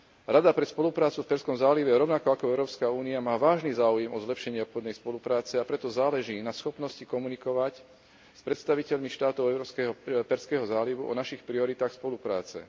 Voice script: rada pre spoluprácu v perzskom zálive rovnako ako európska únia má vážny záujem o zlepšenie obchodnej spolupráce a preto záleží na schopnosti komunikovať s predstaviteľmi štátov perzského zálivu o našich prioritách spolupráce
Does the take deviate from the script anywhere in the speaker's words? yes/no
no